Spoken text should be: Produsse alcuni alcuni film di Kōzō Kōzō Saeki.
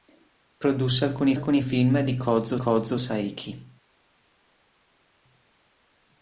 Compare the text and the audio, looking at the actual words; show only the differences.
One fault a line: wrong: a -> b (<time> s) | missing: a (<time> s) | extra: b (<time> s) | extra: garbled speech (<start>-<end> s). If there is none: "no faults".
no faults